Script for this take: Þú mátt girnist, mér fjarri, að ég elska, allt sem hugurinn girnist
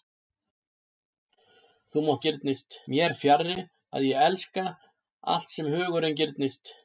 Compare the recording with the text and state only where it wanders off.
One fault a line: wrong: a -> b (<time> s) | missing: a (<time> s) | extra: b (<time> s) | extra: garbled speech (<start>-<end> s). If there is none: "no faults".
no faults